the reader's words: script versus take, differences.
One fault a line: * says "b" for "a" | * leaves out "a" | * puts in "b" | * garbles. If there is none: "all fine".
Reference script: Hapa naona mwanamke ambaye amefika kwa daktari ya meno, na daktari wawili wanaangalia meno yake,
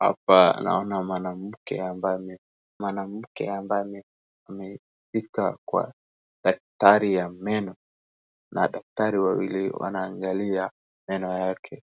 * puts in "mwanamke ambaye"